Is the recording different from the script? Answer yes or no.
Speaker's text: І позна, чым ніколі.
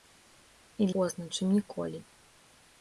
no